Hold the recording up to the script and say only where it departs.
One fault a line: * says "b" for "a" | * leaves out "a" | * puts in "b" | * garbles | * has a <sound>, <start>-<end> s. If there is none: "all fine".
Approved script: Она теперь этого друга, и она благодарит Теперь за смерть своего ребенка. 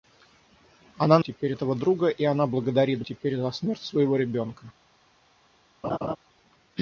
* has a laugh, 5.8-6.2 s